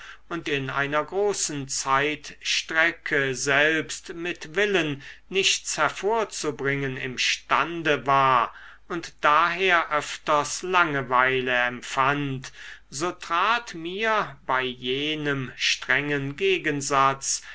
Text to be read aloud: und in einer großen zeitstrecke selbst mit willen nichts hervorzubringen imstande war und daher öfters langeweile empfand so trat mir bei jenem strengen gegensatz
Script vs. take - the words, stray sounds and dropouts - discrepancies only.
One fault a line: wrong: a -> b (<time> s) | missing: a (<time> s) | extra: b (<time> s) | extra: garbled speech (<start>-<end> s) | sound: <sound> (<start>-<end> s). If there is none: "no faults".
no faults